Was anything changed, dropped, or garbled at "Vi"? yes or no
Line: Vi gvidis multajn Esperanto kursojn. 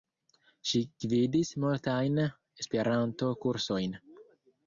yes